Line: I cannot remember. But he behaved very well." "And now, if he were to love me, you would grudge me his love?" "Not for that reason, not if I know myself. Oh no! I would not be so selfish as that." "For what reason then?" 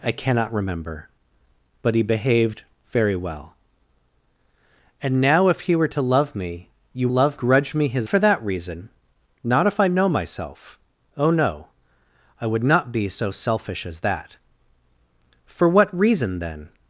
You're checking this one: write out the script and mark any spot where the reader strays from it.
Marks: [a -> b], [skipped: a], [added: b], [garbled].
I cannot remember. But he behaved very well." "And now, if he were to love me, you [would -> love] grudge me his [skipped: love?" "Not] for that reason, not if I know myself. Oh no! I would not be so selfish as that." "For what reason then?"